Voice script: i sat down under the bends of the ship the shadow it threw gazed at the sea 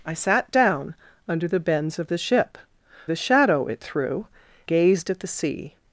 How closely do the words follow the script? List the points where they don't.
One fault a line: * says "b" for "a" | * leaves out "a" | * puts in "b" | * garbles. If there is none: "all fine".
all fine